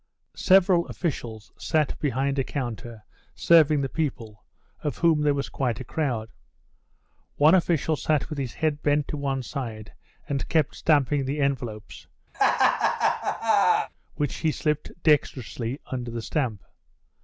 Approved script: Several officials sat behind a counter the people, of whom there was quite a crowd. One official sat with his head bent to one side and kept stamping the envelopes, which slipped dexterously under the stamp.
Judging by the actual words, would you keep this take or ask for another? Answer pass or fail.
fail